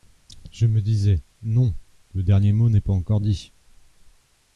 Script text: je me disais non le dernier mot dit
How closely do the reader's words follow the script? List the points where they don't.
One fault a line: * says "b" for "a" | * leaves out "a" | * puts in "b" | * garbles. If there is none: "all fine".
* puts in "n'est pas encore"